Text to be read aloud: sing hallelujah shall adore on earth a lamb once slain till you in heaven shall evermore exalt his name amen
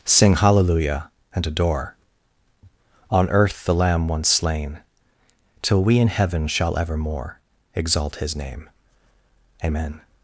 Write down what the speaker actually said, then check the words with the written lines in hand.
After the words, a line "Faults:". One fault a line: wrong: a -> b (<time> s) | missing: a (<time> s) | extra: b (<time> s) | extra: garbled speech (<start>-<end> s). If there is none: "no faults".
sing hallelujah and adore on earth the lamb once slain till we in heaven shall evermore exalt his name amen
Faults:
wrong: shall -> and (1.3 s)
wrong: a -> the (3.6 s)
wrong: you -> we (5.8 s)